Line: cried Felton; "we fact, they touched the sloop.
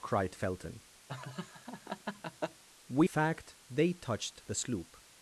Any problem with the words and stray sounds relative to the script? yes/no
yes